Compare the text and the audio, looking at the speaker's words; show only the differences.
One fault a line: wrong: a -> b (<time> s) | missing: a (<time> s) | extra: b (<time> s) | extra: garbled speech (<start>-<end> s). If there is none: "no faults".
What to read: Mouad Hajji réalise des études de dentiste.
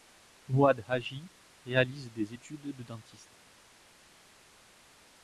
no faults